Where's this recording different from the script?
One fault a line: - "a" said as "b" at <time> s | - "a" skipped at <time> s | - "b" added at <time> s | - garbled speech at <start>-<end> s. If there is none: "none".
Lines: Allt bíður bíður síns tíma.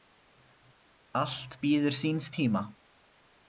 - "bíður" skipped at 2.0 s